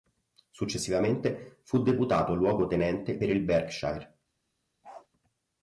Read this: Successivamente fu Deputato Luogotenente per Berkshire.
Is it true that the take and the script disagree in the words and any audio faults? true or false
true